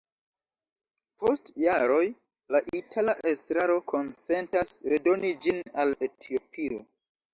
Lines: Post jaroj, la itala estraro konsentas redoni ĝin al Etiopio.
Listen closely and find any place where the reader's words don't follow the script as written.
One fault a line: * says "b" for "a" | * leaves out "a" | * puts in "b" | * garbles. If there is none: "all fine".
all fine